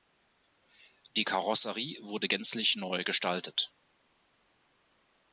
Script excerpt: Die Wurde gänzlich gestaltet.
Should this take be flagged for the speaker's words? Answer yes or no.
yes